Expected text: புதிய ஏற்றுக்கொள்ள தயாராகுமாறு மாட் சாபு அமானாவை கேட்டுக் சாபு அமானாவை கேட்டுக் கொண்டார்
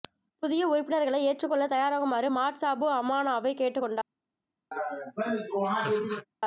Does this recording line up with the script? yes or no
no